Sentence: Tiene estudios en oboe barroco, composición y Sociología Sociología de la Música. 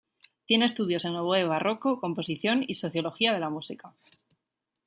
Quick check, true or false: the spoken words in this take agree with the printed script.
false